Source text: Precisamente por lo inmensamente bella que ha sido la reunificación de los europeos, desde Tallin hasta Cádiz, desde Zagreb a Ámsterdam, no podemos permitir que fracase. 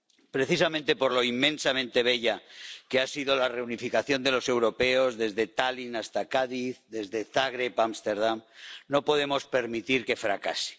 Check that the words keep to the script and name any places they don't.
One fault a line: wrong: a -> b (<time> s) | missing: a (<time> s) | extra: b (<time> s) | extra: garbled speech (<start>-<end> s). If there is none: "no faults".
no faults